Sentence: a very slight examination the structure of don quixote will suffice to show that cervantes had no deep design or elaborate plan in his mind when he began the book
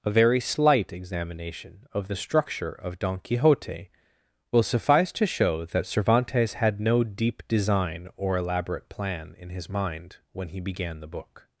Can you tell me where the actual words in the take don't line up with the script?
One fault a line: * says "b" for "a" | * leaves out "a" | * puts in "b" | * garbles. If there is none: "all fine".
* puts in "of"